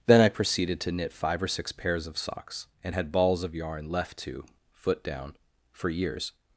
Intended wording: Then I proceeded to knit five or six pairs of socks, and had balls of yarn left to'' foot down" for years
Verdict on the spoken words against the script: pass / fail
pass